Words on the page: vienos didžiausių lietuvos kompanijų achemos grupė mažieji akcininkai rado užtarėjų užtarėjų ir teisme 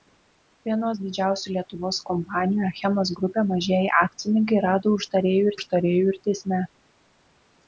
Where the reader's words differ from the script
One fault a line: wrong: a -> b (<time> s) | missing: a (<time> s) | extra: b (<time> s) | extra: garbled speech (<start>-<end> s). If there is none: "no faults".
no faults